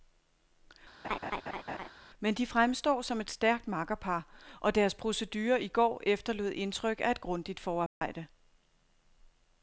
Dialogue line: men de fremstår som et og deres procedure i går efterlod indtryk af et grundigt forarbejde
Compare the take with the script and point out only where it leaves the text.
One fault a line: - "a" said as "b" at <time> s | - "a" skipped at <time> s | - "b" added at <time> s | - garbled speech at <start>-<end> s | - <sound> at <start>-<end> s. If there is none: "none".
- laugh at 1.0-1.9 s
- "stærkt makkerpar" added at 3.3 s
- dropout at 7.9-8.0 s